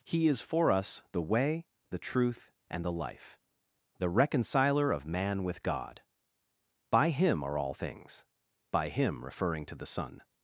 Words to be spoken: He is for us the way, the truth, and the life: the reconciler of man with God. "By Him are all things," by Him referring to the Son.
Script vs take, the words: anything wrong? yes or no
no